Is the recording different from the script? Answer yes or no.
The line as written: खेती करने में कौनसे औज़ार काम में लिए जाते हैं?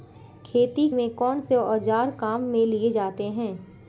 yes